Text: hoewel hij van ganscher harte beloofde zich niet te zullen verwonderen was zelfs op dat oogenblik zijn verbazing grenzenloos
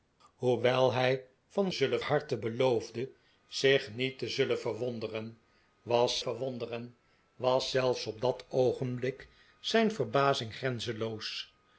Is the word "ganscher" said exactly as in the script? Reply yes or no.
no